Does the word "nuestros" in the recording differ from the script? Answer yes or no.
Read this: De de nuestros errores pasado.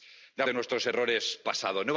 no